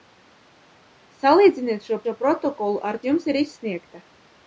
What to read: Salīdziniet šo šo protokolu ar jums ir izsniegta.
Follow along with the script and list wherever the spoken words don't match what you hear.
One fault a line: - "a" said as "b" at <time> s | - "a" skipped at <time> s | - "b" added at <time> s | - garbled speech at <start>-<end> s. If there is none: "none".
none